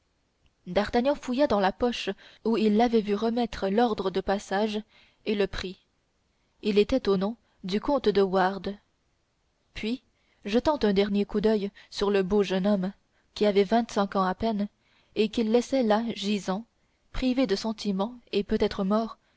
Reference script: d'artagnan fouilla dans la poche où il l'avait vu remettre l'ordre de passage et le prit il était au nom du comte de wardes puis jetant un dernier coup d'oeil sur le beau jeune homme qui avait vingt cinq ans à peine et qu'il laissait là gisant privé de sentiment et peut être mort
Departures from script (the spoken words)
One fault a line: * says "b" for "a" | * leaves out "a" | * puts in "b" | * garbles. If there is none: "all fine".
all fine